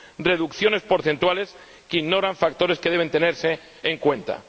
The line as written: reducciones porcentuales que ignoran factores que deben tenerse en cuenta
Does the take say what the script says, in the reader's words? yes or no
yes